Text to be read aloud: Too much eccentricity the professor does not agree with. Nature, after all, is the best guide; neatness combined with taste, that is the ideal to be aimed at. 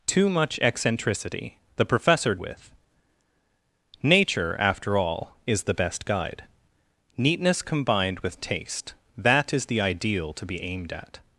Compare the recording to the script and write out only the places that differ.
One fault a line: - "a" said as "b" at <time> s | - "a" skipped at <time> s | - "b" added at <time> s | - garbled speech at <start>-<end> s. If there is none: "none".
- "does not agree" skipped at 2.4 s